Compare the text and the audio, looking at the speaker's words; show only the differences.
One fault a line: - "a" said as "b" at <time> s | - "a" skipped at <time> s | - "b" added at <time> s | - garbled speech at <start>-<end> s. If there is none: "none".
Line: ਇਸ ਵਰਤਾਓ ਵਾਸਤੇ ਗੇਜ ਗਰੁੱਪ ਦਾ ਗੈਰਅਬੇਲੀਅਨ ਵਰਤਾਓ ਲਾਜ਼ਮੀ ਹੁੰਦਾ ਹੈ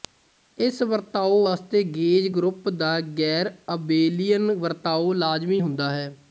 none